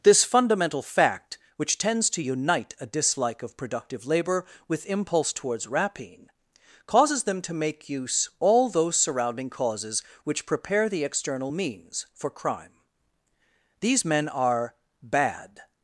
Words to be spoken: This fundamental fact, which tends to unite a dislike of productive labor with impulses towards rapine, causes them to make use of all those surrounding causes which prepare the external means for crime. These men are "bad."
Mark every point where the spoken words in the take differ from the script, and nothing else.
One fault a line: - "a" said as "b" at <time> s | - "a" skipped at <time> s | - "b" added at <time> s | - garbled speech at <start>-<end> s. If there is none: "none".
- "impulses" said as "impulse" at 4.9 s
- "of" skipped at 8.3 s